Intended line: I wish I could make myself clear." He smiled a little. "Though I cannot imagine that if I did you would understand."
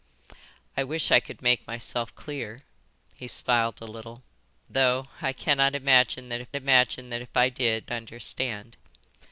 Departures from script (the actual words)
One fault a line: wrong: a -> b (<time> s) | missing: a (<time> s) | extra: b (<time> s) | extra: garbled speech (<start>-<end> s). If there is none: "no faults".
extra: imagine that if (6.5 s)
missing: you would (7.9 s)